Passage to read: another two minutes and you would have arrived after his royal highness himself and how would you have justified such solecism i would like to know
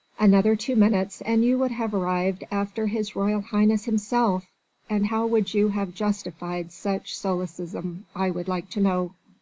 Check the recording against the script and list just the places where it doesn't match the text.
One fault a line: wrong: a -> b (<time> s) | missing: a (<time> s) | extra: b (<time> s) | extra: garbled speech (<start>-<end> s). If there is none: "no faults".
no faults